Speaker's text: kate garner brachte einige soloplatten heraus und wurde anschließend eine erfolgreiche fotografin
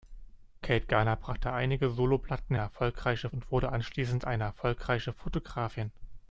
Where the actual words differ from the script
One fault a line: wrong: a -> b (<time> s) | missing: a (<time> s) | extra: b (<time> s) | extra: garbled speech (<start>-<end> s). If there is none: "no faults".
wrong: heraus -> erfolgreiche (2.6 s)